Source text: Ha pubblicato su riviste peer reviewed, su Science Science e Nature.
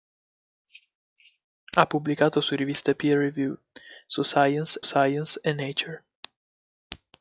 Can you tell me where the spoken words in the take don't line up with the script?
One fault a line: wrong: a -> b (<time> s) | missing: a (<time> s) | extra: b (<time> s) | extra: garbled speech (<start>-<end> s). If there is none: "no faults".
no faults